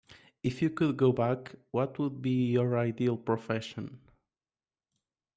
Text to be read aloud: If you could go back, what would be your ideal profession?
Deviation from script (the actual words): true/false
false